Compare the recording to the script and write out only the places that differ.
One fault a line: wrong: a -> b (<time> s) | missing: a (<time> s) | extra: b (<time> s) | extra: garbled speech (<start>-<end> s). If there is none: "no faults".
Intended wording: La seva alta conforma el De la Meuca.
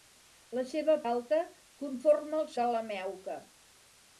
no faults